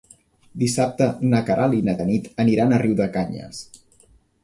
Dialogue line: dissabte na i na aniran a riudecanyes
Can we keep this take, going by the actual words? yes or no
no